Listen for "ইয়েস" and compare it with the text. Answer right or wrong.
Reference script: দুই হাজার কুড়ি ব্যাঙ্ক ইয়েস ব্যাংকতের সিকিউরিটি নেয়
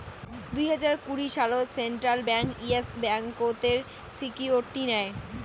right